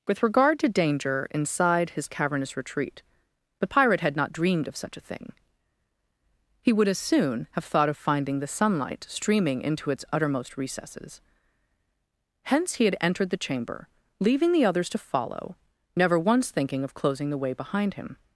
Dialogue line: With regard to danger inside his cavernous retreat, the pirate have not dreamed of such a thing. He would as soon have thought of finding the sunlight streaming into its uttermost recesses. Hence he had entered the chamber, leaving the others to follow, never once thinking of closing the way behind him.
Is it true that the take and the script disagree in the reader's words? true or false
true